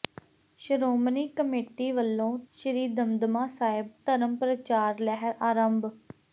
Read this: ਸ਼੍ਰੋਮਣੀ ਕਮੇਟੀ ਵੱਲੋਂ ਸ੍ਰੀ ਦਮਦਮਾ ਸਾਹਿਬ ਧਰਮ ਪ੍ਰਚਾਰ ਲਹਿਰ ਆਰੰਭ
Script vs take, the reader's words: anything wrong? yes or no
no